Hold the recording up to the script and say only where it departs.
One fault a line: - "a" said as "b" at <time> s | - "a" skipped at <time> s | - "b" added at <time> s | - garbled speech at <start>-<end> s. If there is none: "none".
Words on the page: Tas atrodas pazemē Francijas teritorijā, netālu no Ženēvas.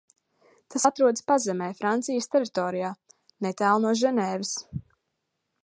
none